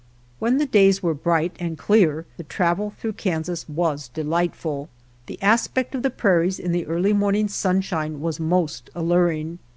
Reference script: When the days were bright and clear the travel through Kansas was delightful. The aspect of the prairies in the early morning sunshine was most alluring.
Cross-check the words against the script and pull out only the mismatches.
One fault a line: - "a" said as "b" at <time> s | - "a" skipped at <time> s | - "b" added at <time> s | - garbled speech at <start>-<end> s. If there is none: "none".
none